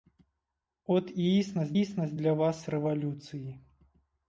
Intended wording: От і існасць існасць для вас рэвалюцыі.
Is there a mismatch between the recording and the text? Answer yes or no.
no